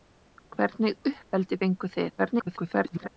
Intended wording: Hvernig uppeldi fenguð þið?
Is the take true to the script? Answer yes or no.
no